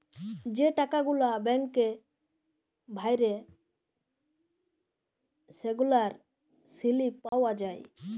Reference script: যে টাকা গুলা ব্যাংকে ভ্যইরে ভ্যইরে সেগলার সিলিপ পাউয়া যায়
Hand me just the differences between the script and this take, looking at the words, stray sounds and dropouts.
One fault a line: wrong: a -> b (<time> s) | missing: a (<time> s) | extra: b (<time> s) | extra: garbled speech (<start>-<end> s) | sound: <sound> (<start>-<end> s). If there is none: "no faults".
missing: ভ্যইরে (3.3 s)
sound: dropout (7.3-7.3 s)